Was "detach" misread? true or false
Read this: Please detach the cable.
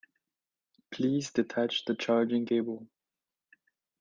false